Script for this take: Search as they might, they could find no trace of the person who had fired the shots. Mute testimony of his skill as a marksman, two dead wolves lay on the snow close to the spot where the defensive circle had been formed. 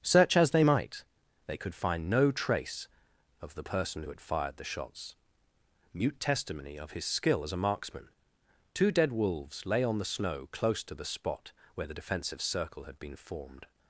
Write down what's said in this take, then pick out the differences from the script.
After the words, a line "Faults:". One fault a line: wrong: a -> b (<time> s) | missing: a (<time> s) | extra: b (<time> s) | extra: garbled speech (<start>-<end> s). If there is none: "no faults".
Search as they might, they could find no trace of the person who had fired the shots. Mute testimony of his skill as a marksman, two dead wolves lay on the snow close to the spot where the defensive circle had been formed.
Faults:
no faults